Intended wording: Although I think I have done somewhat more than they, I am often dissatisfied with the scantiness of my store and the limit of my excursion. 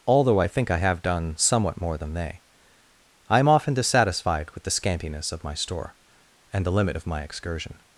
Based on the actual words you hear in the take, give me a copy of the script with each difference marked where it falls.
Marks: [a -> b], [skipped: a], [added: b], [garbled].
Although I think I have done somewhat more than they, I am often dissatisfied with the scantiness of my store and the limit of my excursion.